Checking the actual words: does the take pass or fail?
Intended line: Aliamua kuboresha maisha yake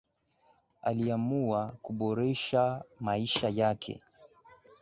pass